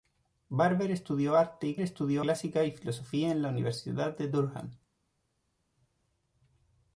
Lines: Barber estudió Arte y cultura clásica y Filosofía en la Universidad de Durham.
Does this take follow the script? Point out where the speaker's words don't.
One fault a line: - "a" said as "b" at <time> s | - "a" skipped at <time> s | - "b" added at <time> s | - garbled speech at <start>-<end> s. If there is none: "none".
- "cultura" said as "estudió" at 1.8 s